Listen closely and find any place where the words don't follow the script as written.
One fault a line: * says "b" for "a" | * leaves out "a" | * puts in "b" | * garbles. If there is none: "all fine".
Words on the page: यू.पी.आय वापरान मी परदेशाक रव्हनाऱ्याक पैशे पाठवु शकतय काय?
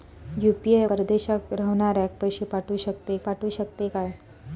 * leaves out "वापरान मी"
* puts in "पाठवु शकतय"